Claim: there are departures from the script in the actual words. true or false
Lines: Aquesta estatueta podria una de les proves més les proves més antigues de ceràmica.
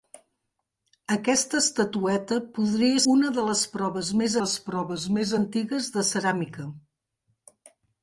false